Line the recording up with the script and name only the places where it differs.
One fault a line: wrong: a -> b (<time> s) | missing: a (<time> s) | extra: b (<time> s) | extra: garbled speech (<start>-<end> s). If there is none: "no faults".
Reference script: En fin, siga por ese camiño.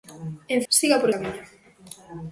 missing: fin (0.6 s)
missing: ese (1.1 s)